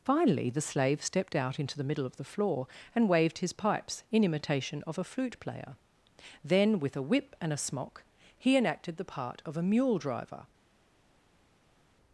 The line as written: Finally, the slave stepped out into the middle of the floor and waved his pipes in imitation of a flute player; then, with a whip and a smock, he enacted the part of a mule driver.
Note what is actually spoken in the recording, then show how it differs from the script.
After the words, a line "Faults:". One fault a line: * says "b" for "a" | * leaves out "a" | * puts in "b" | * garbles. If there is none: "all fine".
Finally, the slave stepped out into the middle of the floor and waved his pipes in imitation of a flute player; then, with a whip and a smock, he enacted the part of a mule driver.
Faults:
all fine